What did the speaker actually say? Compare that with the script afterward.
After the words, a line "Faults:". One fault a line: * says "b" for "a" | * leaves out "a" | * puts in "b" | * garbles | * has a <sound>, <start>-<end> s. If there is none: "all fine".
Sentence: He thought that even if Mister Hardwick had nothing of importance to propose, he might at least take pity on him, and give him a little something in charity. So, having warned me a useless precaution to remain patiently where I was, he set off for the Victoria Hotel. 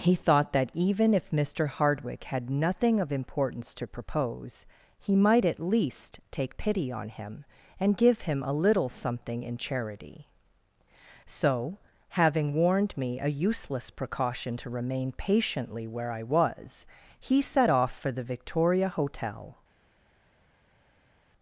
He thought that even if Mister Hardwick had nothing of importance to propose, he might at least take pity on him, and give him a little something in charity. So, having warned me a useless precaution to remain patiently where I was, he set off for the Victoria Hotel.
Faults:
all fine